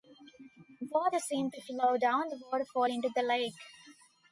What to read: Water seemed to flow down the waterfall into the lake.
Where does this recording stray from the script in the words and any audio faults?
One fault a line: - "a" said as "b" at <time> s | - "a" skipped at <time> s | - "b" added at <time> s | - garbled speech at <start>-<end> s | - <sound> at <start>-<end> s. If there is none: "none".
none